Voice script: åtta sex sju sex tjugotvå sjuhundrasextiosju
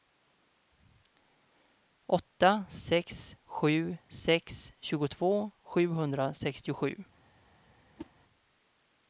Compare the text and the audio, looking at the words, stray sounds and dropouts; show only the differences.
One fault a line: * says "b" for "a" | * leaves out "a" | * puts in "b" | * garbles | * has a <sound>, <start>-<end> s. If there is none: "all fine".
* has a whoosh, 8.0-8.1 s